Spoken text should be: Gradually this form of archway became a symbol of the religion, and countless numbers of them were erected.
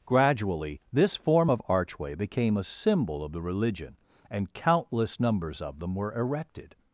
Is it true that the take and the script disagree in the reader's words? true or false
false